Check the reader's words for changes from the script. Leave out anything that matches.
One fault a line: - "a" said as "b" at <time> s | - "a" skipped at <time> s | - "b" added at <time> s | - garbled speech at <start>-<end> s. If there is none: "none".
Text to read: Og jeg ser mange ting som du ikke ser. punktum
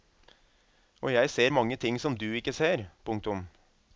none